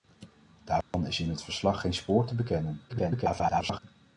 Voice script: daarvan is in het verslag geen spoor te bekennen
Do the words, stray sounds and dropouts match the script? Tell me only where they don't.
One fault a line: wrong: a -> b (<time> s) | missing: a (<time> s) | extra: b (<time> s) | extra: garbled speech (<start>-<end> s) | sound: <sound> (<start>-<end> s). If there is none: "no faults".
sound: dropout (0.8-0.9 s)
extra: garbled speech (2.9-3.8 s)